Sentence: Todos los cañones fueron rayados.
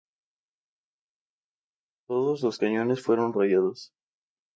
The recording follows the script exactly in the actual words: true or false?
true